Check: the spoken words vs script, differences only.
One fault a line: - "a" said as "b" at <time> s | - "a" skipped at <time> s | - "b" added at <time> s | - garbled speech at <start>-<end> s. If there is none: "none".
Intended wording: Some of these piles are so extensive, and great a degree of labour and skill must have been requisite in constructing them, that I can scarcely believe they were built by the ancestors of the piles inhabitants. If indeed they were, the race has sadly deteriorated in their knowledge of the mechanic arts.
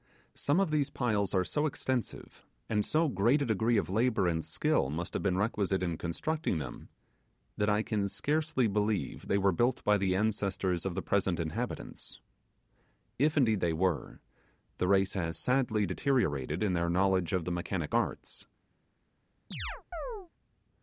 - "so" added at 2.8 s
- "piles" said as "present" at 11.0 s